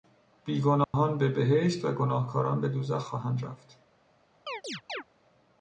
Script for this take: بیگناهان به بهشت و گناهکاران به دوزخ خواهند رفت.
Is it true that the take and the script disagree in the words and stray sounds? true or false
true